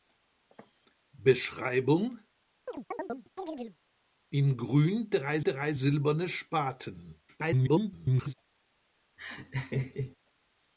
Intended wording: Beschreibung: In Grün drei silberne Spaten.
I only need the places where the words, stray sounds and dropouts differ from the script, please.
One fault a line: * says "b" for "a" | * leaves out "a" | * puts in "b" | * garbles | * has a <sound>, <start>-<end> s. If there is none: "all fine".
* has a chirp, 2.7-3.8 s
* puts in "drei"
* garbles
* has a laugh, 9.2-10.2 s